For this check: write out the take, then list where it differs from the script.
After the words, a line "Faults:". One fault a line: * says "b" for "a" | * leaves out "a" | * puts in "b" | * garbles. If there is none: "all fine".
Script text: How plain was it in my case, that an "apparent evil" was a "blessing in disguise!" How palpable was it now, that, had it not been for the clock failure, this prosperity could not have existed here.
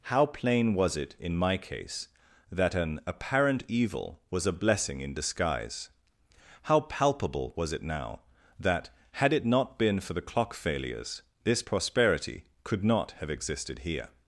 How plain was it in my case, that an "apparent evil" was a "blessing in disguise!" How palpable was it now, that, had it not been for the clock failures, this prosperity could not have existed here.
Faults:
* says "failures" for "failure"